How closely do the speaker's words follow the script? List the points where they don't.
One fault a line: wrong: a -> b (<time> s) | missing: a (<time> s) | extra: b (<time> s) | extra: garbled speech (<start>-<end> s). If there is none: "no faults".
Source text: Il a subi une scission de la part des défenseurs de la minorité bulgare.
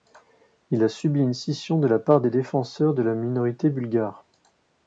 no faults